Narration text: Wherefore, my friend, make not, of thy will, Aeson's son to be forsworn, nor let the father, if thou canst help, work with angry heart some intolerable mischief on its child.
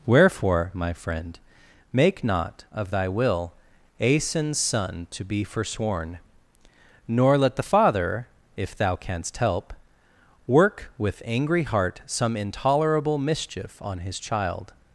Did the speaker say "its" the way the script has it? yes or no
no